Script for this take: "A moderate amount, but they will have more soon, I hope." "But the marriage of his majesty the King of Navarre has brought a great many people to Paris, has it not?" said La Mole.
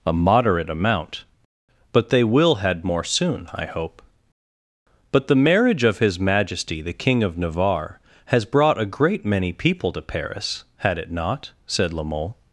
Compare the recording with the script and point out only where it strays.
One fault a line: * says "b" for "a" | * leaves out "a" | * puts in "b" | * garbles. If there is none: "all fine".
* says "had" for "have"
* says "had" for "has"